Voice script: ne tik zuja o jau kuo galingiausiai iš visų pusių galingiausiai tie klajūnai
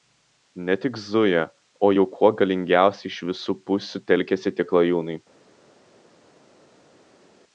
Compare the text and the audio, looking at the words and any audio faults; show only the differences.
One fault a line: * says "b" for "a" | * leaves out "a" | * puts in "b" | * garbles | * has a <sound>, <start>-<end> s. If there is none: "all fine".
* says "telkiasi" for "galingiausiai"